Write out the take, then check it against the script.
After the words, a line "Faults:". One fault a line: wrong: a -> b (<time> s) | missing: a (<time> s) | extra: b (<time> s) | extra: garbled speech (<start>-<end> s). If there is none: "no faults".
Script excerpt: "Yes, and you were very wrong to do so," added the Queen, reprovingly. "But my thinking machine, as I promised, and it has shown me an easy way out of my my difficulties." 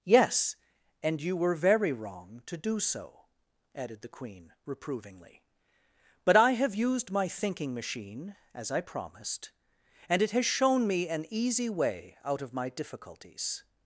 "Yes, and you were very wrong to do so," added the Queen, reprovingly. "But I have used my thinking machine, as I promised, and it has shown me an easy way out of my difficulties."
Faults:
extra: I have used (6.3 s)
missing: my (12.7 s)